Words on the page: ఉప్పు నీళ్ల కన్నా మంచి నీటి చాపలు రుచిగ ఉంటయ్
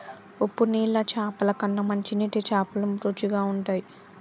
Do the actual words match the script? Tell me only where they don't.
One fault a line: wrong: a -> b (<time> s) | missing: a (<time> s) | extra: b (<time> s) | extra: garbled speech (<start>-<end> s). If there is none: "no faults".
extra: చాపల (1.1 s)